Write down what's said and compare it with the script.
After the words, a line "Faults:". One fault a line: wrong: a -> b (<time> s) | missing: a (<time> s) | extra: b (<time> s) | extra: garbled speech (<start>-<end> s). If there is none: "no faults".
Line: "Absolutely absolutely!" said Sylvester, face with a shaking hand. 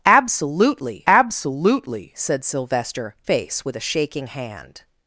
"Absolutely absolutely!" said Sylvester, face with a shaking hand.
Faults:
no faults